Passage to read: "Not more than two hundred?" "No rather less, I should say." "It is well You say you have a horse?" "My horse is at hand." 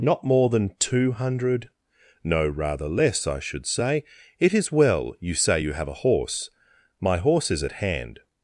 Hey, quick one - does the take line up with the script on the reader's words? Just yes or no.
yes